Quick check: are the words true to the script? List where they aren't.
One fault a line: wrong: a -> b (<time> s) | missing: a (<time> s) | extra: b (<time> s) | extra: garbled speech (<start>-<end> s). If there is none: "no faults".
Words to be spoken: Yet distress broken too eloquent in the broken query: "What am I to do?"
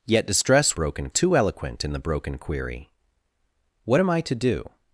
no faults